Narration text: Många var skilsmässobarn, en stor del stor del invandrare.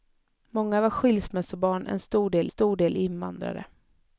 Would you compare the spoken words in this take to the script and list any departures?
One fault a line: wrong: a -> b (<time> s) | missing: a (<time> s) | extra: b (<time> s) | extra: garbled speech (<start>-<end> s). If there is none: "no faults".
no faults